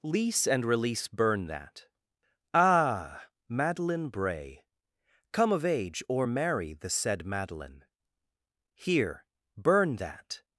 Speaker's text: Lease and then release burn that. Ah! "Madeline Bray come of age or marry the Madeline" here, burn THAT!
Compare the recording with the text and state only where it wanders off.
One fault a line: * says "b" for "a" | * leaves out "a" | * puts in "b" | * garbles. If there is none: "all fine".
* leaves out "then"
* puts in "said"